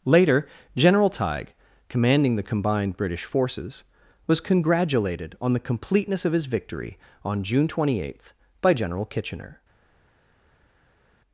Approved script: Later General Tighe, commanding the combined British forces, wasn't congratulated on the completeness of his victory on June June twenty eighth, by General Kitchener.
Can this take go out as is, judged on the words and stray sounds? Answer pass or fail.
fail